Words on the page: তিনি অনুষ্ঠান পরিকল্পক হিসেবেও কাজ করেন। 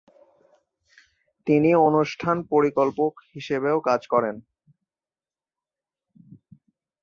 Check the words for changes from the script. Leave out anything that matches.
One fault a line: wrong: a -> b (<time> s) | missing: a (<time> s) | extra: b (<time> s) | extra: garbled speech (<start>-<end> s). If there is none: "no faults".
no faults